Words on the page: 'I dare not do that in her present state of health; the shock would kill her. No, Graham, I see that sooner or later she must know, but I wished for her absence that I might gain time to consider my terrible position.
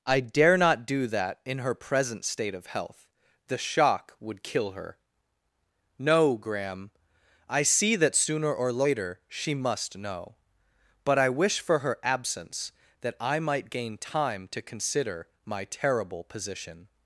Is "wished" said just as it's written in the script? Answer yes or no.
no